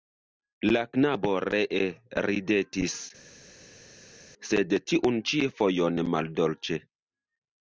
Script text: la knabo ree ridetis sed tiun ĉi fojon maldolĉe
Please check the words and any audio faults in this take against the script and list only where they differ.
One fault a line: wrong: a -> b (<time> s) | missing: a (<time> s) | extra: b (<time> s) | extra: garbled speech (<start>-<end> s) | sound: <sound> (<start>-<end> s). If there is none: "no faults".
no faults